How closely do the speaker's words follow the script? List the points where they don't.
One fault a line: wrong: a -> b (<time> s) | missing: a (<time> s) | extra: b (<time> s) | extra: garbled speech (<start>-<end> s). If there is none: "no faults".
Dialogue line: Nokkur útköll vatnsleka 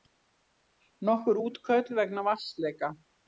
extra: vegna (2.0 s)